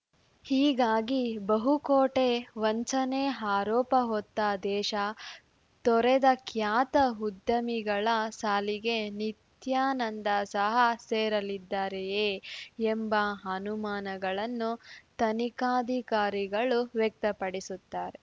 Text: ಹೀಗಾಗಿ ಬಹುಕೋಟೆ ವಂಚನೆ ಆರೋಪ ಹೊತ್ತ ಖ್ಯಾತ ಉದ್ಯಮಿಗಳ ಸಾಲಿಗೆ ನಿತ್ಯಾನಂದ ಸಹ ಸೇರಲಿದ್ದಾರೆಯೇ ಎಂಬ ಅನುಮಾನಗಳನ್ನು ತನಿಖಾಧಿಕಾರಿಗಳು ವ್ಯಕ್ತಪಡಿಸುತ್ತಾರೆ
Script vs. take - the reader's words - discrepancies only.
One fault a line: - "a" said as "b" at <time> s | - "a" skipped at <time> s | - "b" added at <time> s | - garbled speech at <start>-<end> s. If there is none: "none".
- "ದೇಶ ತೊರೆದ" added at 4.6 s